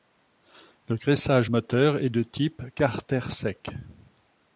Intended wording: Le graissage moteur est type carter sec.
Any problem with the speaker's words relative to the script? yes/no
yes